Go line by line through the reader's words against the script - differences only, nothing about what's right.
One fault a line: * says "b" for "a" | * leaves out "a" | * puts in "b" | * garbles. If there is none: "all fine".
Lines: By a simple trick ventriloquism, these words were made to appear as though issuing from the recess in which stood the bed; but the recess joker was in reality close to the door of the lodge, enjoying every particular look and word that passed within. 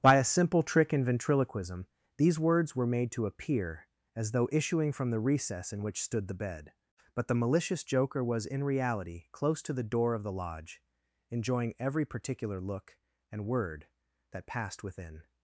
* puts in "in"
* says "malicious" for "recess"